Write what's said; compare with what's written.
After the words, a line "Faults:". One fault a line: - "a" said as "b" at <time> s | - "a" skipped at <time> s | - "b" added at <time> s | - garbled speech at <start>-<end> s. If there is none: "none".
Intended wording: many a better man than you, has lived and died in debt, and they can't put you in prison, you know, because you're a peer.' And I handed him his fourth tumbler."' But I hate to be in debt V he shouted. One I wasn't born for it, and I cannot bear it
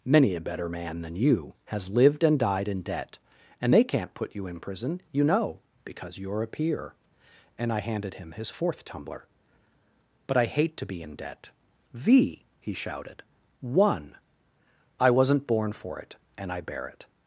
many a better man than you, has lived and died in debt, and they can't put you in prison, you know, because you're a peer.' And I handed him his fourth tumbler."' But I hate to be in debt V he shouted. One I wasn't born for it, and I bear it
Faults:
- "cannot" skipped at 16.6 s